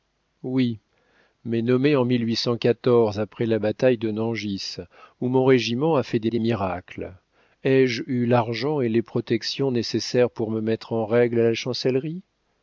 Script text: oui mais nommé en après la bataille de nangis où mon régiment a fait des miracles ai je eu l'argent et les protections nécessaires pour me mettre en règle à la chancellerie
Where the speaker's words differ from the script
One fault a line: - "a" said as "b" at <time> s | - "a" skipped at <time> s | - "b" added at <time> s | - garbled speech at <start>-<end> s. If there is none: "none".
- "des" added at 6.3 s